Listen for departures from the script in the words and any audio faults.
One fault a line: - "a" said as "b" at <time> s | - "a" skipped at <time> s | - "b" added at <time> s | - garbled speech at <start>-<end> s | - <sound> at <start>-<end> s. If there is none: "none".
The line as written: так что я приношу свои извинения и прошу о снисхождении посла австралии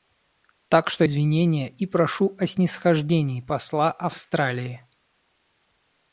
- "я приношу свои" skipped at 1.1 s